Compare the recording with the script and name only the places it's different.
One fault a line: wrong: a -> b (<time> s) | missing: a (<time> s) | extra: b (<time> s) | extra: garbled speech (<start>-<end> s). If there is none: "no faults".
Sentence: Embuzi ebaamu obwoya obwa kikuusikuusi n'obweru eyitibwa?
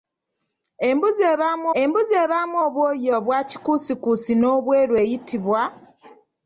extra: embuzi ebaamu (1.8 s)